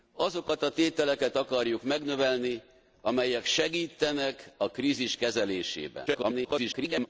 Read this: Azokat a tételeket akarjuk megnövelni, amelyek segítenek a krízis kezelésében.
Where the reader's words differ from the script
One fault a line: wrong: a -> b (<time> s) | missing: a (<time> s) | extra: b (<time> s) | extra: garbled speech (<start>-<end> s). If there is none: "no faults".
extra: garbled speech (6.1-7.1 s)